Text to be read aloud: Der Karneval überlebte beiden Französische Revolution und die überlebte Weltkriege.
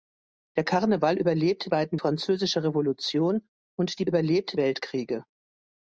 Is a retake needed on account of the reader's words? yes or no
no